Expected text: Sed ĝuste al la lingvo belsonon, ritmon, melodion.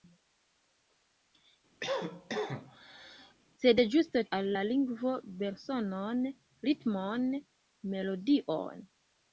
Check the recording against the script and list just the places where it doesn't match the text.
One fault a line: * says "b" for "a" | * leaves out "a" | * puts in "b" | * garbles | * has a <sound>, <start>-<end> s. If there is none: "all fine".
* has a cough, 1.8-3.3 s